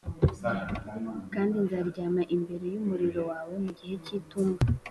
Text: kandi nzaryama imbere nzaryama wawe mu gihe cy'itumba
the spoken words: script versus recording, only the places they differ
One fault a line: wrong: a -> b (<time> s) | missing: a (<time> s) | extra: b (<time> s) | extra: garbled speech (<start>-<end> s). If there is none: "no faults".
wrong: nzaryama -> y'umuriro (2.7 s)